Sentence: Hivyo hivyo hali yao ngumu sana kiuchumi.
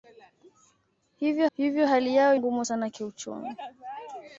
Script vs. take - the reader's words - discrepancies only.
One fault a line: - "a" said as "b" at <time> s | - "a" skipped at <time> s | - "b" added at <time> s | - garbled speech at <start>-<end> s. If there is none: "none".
none